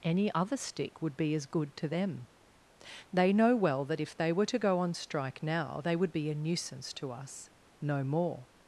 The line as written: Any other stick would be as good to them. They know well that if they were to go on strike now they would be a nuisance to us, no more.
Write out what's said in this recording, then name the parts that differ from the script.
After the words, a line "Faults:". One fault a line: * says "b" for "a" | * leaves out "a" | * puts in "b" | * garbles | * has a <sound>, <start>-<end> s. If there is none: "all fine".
Any other stick would be as good to them. They know well that if they were to go on strike now they would be a nuisance to us, no more.
Faults:
all fine